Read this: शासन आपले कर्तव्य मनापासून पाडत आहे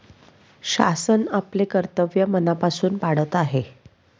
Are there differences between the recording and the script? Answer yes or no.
no